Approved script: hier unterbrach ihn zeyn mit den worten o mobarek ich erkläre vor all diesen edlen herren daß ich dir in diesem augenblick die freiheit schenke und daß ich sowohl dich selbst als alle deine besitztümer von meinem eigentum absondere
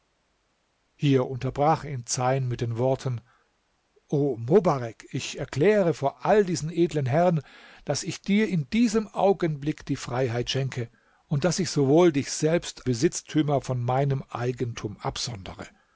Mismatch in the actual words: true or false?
true